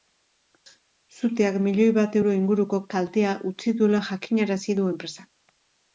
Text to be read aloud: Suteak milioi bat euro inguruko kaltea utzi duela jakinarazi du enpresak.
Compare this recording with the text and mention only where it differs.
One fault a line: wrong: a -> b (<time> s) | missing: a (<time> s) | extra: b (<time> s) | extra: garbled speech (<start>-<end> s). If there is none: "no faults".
no faults